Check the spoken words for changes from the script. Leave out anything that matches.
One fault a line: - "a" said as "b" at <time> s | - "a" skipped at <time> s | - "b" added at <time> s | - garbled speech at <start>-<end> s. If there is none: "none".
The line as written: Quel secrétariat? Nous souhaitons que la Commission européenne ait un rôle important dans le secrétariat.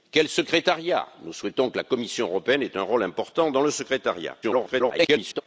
- garbled speech at 4.4-5.4 s